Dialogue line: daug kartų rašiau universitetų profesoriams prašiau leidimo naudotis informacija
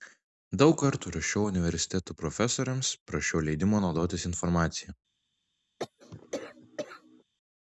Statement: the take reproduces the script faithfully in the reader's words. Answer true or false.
true